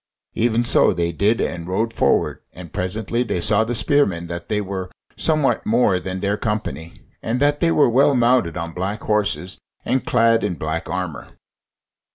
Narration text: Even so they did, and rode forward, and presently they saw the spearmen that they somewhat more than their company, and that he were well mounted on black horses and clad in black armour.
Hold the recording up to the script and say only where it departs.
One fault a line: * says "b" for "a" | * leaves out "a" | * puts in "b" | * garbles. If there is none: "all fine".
* puts in "were"
* says "they" for "he"